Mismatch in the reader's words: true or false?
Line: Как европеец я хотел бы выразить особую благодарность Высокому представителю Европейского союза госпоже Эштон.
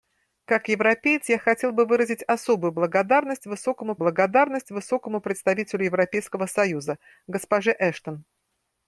true